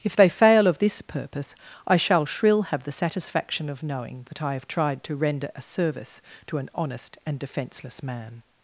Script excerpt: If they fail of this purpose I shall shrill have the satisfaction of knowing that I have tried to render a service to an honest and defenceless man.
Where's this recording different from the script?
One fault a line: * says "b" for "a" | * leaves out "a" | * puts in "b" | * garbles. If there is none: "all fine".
all fine